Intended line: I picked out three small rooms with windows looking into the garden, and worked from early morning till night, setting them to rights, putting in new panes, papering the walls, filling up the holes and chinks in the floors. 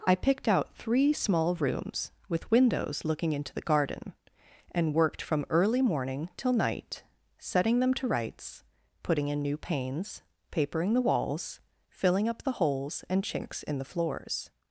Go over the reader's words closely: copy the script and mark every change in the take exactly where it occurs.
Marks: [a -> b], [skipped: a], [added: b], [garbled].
I picked out three small rooms with windows looking into the garden, and worked from early morning till night, setting them to rights, putting in new panes, papering the walls, filling up the holes and chinks in the floors.